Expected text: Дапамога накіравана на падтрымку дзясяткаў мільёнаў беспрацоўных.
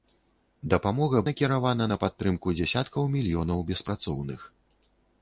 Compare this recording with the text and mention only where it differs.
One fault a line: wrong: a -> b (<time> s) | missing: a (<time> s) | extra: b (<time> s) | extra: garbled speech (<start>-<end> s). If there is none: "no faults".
no faults